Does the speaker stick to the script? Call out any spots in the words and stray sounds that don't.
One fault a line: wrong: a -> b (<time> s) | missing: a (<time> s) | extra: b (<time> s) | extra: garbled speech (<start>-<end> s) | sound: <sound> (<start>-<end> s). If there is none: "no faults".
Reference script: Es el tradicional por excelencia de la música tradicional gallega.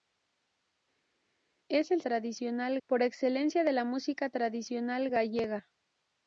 no faults